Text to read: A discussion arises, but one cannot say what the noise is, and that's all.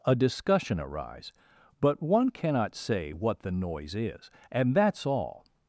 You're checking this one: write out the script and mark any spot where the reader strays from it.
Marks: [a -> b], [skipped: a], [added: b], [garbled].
A discussion [arises, -> arise] but one cannot say what the noise is, and that's all.